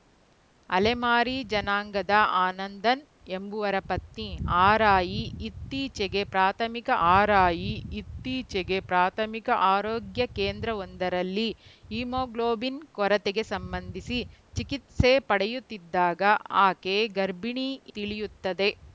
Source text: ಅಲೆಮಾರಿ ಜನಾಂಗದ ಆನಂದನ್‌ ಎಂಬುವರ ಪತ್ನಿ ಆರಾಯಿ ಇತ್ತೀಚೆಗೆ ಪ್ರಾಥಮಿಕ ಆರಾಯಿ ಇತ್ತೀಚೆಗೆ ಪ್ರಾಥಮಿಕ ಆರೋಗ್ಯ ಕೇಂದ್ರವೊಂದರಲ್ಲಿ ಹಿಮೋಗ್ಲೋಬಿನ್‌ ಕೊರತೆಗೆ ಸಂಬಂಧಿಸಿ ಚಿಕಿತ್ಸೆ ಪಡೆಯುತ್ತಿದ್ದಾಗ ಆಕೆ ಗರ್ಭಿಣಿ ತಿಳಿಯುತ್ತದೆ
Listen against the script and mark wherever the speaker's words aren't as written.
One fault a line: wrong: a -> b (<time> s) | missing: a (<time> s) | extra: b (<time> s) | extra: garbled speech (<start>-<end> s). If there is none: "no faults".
no faults